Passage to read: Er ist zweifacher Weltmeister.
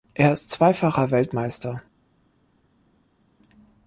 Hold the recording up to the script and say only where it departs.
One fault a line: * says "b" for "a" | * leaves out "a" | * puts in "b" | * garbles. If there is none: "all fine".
all fine